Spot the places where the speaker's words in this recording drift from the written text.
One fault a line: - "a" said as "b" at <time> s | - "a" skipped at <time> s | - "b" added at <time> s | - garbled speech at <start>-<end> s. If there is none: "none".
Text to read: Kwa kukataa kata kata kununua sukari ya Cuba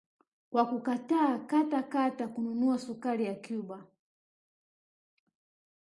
none